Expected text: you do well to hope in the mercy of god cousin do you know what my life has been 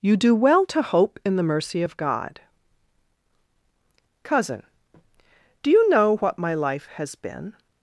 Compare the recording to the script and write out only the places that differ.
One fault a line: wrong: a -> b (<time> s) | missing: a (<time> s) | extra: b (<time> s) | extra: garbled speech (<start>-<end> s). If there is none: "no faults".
no faults